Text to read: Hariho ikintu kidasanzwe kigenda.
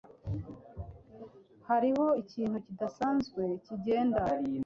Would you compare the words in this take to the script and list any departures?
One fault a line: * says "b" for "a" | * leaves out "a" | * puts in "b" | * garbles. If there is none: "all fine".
all fine